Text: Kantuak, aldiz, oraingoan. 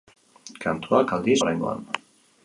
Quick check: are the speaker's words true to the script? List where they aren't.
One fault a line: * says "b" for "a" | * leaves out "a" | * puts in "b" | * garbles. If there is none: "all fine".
all fine